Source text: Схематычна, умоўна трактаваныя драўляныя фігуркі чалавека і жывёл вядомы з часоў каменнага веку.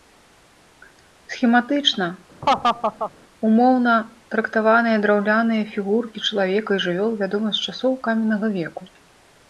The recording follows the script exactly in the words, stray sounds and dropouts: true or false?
false